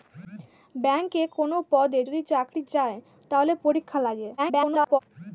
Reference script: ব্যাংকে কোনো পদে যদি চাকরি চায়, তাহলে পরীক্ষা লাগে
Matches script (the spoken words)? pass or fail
fail